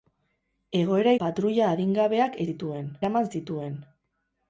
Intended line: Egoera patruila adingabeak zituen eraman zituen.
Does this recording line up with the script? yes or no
yes